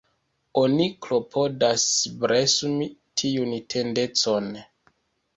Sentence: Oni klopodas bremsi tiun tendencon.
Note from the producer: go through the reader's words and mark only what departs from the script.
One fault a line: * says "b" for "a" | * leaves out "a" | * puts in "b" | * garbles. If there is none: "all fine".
all fine